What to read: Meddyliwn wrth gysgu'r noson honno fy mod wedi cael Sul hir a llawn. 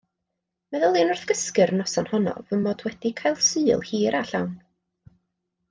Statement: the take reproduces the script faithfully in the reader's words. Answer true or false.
true